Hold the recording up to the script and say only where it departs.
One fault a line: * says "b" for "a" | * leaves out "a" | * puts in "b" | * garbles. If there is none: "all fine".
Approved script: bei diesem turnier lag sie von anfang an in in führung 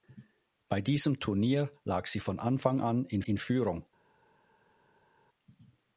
all fine